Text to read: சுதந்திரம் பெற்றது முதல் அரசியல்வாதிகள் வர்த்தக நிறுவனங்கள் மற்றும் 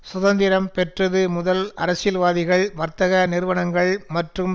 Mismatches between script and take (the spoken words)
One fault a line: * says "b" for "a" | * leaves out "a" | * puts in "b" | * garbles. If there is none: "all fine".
all fine